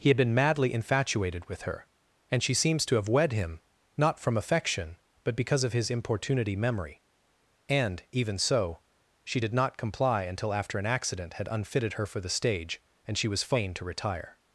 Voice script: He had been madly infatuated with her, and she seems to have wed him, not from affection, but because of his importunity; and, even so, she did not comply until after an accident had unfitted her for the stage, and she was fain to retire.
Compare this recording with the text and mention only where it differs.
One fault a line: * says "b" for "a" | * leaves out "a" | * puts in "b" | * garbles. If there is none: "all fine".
* puts in "memory"